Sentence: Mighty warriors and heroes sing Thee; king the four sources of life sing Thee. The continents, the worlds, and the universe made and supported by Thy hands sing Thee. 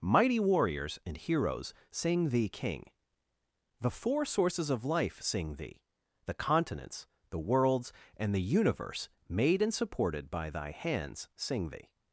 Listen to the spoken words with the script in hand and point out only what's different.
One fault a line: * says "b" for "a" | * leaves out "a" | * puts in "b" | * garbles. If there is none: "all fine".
all fine